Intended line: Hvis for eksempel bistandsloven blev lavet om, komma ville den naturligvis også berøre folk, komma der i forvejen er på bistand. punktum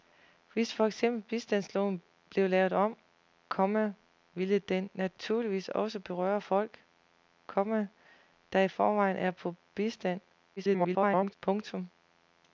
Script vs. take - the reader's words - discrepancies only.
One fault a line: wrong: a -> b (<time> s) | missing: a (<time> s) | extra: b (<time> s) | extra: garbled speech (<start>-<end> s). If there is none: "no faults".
extra: garbled speech (10.6-11.4 s)